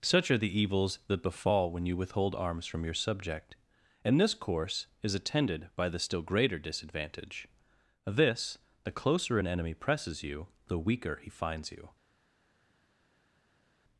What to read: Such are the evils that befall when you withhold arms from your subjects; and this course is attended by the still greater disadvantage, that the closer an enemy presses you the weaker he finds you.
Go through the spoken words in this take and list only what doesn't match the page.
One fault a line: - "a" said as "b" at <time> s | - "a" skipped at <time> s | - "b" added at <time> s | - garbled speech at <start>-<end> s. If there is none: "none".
- "subjects" said as "subject" at 2.9 s
- "that" said as "this" at 8.1 s